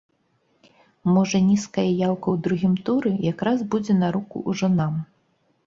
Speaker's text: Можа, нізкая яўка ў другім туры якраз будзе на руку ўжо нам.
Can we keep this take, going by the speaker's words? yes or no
yes